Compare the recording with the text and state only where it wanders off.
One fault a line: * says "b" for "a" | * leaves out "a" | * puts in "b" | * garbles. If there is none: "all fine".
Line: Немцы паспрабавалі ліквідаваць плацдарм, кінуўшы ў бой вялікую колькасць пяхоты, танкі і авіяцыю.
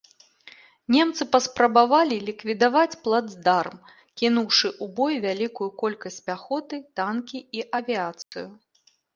all fine